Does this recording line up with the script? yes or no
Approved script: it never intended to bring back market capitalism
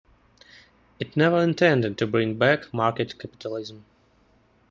yes